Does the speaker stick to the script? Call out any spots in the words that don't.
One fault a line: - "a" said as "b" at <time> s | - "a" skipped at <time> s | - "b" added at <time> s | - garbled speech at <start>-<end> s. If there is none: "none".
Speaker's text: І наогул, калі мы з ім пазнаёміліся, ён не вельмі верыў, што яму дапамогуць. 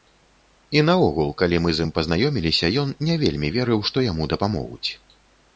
none